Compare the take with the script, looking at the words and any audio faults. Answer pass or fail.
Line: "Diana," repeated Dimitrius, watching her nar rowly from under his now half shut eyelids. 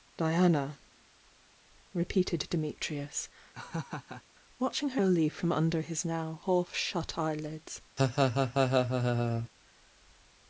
fail